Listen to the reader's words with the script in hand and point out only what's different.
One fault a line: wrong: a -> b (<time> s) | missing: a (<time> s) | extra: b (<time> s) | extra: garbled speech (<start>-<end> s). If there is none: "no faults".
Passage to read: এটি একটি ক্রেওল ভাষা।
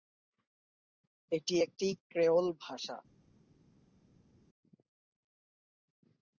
no faults